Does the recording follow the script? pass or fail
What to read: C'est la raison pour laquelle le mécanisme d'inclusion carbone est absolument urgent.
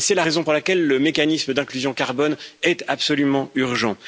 pass